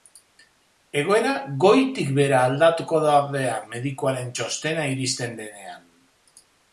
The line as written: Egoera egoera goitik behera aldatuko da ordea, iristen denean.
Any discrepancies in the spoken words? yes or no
yes